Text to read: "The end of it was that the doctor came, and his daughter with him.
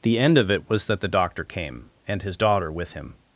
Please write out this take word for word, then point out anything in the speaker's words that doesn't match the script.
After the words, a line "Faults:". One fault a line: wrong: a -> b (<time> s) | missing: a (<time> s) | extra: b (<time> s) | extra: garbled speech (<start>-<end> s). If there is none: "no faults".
"The end of it was that the doctor came, and his daughter with him.
Faults:
no faults